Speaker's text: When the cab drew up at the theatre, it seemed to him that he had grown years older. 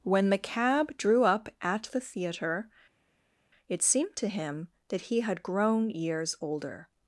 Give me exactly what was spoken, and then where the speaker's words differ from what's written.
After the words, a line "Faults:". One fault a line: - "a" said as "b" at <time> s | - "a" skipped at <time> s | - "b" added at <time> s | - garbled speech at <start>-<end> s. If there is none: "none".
When the cab drew up at the theatre, it seemed to him that he had grown years older.
Faults:
none